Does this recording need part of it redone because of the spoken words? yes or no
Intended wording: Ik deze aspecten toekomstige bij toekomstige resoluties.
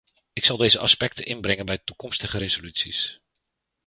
yes